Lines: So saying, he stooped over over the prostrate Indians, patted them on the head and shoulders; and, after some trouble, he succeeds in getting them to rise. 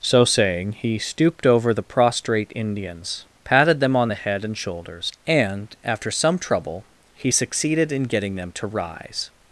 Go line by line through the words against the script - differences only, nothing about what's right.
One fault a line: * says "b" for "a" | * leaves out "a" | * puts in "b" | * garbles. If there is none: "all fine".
* leaves out "over"
* says "succeeded" for "succeeds"